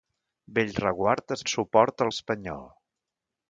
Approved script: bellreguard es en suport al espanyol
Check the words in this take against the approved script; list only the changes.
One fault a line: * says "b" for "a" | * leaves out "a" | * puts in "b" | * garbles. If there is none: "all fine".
all fine